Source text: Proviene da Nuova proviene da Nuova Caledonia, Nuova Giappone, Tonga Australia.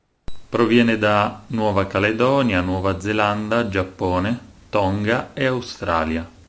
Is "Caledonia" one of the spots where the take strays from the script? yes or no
yes